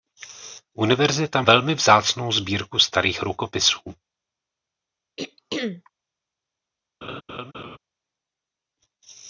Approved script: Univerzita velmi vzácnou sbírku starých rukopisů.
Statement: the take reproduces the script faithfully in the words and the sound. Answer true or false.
false